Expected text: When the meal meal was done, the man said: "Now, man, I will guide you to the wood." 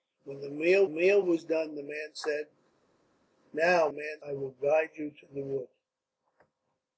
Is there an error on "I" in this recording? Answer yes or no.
no